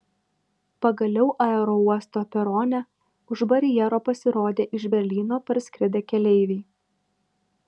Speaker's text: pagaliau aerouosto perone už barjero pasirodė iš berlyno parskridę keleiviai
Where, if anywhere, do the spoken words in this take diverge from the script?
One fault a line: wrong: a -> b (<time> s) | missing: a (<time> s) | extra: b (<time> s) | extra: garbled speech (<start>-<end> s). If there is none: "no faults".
no faults